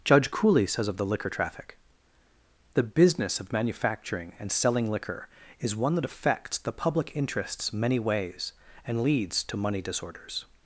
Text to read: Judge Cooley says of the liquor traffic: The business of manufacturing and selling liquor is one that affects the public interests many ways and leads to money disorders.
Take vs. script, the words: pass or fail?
pass